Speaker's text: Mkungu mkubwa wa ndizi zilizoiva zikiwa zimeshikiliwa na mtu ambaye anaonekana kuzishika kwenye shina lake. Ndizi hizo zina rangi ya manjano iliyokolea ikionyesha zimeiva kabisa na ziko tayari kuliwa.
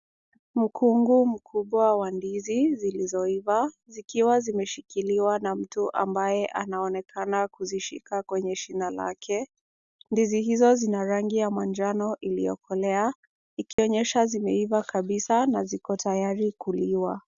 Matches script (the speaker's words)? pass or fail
pass